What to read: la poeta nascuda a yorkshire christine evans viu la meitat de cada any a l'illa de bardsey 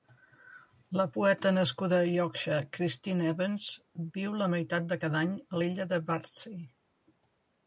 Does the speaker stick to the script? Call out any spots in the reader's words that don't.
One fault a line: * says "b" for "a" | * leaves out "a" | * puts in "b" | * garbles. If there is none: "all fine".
all fine